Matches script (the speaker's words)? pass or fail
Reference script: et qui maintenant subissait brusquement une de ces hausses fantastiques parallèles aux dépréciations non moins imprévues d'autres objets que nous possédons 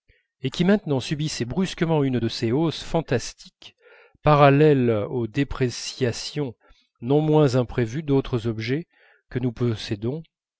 pass